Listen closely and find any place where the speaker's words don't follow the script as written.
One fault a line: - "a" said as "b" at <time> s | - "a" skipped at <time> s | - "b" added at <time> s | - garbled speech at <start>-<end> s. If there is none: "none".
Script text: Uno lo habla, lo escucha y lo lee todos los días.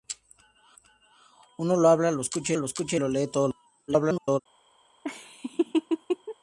- "lo escucha" added at 2.5 s
- garbled speech at 3.9-4.4 s